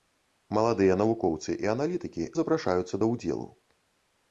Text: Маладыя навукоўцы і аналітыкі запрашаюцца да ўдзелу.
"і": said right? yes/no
yes